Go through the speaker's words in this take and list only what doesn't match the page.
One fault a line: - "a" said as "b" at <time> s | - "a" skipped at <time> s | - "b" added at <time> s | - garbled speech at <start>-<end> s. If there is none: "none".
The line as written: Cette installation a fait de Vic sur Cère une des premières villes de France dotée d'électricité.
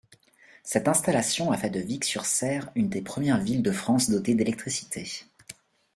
none